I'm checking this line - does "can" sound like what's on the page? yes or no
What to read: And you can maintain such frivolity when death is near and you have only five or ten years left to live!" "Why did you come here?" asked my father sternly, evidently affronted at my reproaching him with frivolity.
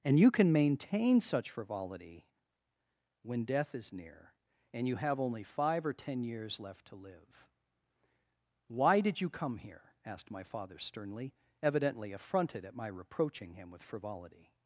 yes